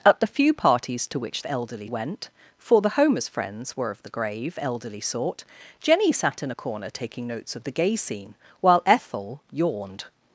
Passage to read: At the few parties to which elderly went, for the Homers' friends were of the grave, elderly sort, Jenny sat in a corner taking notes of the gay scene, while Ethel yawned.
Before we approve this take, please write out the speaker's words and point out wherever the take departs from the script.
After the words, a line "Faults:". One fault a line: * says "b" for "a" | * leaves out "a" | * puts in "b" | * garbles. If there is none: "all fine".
At the few parties to which elderly went, for the Homers' friends were of the grave, elderly sort, Jenny sat in a corner taking notes of the gay scene, while Ethel yawned.
Faults:
all fine